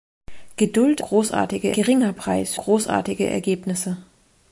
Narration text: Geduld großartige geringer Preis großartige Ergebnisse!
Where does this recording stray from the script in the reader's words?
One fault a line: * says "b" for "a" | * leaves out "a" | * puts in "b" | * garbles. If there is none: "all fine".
all fine